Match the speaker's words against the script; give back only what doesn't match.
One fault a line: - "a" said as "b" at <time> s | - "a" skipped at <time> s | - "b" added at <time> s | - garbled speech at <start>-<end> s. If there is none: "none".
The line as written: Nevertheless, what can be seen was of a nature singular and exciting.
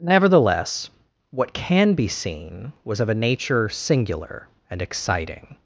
none